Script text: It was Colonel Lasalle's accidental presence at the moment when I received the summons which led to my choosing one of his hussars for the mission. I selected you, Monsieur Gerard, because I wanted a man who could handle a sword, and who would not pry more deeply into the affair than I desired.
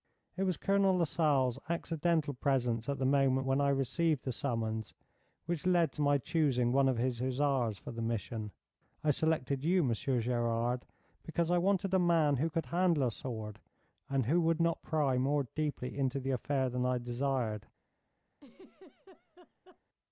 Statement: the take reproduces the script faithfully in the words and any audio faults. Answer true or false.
false